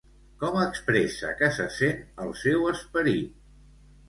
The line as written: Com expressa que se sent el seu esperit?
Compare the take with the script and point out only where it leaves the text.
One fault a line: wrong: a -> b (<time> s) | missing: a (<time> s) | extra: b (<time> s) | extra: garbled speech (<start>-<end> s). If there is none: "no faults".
no faults